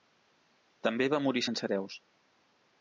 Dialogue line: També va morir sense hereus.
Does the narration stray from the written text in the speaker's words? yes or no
no